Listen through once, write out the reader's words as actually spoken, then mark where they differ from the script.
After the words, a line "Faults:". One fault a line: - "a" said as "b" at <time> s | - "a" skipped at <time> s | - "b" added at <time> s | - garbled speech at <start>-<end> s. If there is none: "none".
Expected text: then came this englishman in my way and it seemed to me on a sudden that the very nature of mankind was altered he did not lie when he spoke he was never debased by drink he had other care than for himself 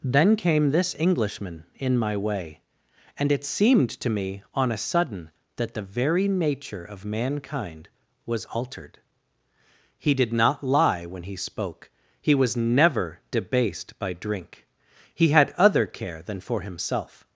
then came this englishman in my way and it seemed to me on a sudden that the very nature of mankind was altered he did not lie when he spoke he was never debased by drink he had other care than for himself
Faults:
none